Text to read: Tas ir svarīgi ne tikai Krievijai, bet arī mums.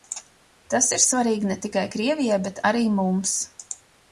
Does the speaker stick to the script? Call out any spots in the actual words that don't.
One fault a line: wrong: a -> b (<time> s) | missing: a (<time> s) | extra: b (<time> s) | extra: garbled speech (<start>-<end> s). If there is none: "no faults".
no faults